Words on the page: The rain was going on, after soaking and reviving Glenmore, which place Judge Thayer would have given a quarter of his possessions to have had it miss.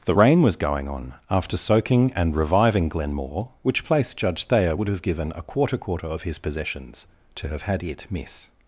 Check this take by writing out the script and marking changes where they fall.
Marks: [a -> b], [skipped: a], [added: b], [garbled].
The rain was going on, after soaking and reviving Glenmore, which place Judge Thayer would have given a quarter [added: quarter] of his possessions to have had it miss.